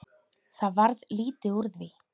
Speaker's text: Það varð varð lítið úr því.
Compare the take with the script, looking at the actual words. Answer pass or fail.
fail